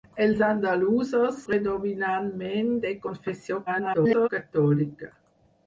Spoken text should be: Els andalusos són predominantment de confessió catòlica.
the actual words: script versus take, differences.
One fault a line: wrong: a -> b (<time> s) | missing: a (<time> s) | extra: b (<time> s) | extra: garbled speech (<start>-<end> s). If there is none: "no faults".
missing: són (1.4 s)
extra: garbled speech (3.7-4.3 s)